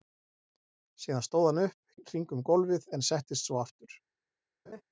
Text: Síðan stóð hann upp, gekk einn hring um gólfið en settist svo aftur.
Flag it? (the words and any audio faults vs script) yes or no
yes